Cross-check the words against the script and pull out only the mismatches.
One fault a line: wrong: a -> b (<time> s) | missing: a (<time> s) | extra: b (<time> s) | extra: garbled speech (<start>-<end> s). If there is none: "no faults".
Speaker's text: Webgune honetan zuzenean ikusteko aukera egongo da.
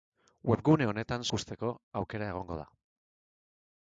missing: zuzenean (1.2 s)